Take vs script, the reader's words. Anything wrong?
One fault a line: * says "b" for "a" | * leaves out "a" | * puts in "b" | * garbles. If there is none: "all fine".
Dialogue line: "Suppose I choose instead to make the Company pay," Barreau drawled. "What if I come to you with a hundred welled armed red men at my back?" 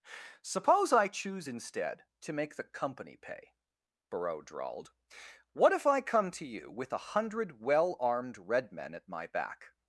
* says "well" for "welled"